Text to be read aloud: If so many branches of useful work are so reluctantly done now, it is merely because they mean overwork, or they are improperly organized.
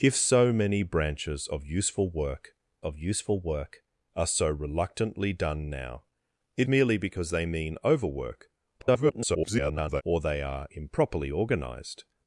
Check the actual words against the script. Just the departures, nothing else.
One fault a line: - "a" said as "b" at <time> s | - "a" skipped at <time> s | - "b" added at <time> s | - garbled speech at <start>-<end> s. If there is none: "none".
- "of useful work" added at 2.8 s
- "is" skipped at 6.7 s
- garbled speech at 8.8-10.0 s